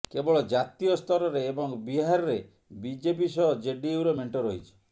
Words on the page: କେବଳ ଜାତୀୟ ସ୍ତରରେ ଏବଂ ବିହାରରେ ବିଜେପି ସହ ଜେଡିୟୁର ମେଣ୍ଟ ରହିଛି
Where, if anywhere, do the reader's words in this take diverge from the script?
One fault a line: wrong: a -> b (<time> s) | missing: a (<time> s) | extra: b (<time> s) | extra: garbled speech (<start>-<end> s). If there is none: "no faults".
no faults